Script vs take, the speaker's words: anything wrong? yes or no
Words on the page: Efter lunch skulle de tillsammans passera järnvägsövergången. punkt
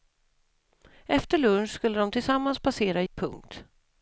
yes